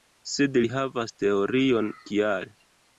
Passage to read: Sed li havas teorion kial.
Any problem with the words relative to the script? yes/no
no